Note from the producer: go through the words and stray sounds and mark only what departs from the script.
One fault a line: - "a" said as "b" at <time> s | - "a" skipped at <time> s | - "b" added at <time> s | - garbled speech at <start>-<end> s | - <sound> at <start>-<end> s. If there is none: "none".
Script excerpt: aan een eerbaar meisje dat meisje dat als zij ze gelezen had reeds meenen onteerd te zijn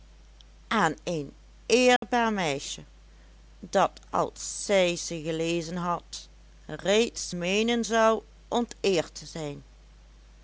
- dropout at 2.0-2.0 s
- "meisje dat" skipped at 3.9 s
- "zou" added at 7.8 s